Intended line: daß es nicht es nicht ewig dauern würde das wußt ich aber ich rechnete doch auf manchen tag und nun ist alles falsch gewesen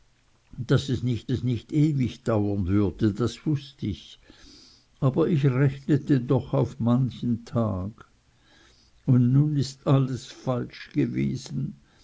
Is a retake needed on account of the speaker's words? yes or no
no